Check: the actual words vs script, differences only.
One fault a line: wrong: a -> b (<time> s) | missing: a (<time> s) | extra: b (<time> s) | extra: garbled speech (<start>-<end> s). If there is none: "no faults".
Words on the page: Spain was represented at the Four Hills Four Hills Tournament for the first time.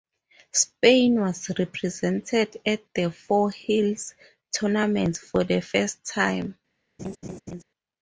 missing: Four Hills (4.2 s)